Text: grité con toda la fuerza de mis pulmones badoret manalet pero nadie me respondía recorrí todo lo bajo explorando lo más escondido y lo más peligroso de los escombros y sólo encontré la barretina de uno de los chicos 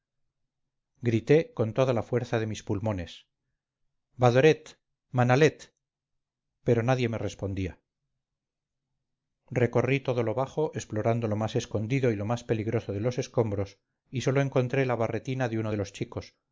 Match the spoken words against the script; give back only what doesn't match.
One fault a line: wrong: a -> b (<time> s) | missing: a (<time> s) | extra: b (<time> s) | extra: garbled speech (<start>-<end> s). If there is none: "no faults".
no faults